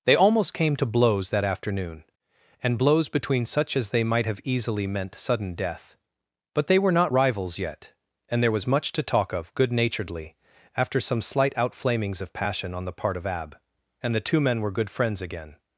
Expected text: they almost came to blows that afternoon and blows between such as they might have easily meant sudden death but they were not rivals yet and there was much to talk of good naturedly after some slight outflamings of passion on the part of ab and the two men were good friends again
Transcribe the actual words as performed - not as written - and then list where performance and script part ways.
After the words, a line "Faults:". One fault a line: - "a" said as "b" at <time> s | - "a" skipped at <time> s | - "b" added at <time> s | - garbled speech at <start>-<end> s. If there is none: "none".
they almost came to blows that afternoon and blows between such as they might have easily meant sudden death but they were not rivals yet and there was much to talk of good naturedly after some slight outflamings of passion on the part of ab and the two men were good friends again
Faults:
none